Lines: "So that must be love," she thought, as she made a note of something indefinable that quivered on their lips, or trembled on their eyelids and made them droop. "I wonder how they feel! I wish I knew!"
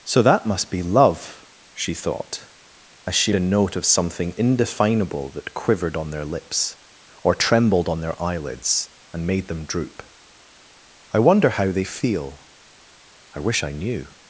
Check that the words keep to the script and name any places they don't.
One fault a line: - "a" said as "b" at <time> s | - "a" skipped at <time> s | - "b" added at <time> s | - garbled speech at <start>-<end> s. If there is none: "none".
- "made" skipped at 3.4 s